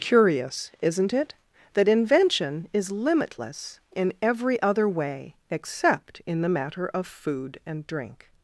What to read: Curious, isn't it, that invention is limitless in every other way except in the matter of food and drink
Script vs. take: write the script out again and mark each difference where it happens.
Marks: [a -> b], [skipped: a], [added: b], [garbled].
Curious, isn't it, that invention is limitless in every other way except in the matter of food and drink